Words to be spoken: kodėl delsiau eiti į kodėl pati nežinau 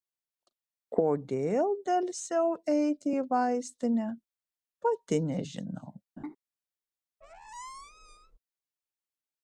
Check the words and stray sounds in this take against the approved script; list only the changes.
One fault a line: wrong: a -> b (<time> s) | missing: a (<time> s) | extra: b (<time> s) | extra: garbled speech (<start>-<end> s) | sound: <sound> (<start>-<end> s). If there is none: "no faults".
wrong: kodėl -> vaistinę (3.3 s)
sound: laugh (6.2-6.4 s)
sound: squeak (7.2-8.4 s)